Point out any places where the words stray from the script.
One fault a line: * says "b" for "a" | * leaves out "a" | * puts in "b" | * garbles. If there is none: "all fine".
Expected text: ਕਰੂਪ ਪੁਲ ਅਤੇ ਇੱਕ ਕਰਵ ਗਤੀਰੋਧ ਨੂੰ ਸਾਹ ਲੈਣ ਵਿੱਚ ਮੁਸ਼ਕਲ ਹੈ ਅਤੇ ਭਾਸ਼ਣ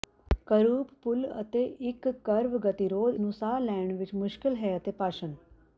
all fine